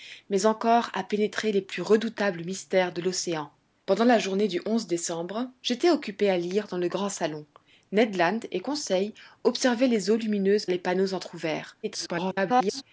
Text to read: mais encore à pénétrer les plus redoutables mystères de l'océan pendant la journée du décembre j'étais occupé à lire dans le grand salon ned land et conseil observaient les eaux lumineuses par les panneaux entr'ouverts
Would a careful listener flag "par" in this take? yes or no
yes